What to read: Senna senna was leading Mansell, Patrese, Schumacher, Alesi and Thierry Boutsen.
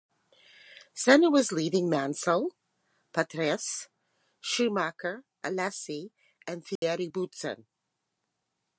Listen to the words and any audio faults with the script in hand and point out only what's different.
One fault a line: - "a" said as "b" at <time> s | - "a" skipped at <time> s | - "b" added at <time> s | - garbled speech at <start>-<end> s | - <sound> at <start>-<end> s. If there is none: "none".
- "senna" skipped at 1.3 s
- dropout at 6.8-6.8 s